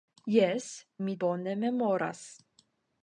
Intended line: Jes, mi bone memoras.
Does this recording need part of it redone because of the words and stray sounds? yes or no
no